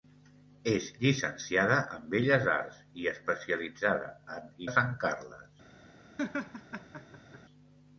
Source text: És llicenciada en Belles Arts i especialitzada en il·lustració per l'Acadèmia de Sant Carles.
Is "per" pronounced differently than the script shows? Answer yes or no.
yes